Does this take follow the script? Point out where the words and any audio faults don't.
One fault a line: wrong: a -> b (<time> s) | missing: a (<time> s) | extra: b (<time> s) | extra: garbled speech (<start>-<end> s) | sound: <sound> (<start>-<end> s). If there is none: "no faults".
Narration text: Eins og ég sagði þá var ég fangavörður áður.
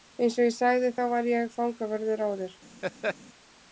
sound: laugh (2.8-3.2 s)